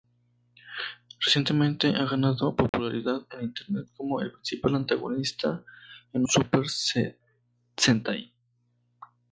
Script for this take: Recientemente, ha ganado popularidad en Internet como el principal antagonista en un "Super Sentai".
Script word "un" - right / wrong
wrong